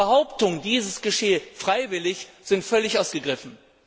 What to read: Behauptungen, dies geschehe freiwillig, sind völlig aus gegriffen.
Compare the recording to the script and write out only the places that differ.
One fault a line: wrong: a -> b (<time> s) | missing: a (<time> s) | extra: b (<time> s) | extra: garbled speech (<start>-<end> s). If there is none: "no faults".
no faults